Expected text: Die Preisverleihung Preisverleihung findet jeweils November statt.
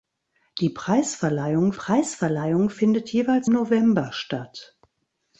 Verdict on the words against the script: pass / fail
pass